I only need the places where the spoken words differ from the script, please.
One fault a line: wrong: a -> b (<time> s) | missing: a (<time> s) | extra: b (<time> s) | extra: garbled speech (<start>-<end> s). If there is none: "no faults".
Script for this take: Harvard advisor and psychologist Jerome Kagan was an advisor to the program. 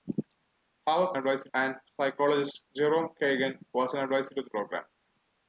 no faults